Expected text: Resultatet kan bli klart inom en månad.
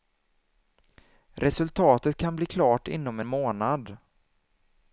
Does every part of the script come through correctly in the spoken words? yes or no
no